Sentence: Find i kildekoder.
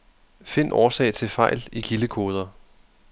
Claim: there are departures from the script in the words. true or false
true